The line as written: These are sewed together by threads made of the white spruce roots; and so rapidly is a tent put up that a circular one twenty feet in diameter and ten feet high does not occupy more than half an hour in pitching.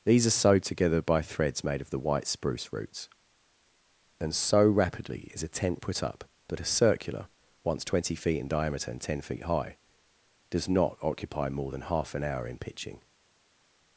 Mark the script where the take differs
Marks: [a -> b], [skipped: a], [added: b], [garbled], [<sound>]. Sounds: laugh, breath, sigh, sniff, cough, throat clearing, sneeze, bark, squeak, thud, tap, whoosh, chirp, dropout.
These are sewed together by threads made of the white spruce roots; and so rapidly is a tent put up that a circular [one -> once] twenty feet in diameter and ten feet high does not occupy more than half an hour in pitching.